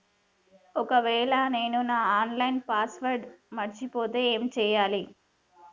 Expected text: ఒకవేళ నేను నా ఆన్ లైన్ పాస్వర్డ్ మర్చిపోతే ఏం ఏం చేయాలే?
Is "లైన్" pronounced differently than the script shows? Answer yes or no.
no